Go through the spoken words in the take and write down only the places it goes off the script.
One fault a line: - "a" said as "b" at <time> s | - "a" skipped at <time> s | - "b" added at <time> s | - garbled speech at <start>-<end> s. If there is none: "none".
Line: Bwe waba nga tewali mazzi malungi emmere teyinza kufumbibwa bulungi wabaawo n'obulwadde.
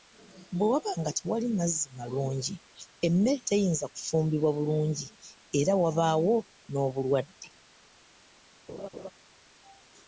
- "era" added at 5.6 s